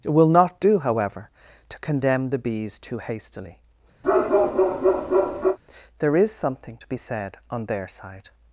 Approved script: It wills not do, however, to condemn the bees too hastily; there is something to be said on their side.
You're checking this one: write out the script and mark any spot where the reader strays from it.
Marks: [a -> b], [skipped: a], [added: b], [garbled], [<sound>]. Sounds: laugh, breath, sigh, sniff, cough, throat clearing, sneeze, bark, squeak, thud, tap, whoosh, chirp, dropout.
It [wills -> will] not do, however, to condemn the bees too hastily; [bark] there is something to be said on their side.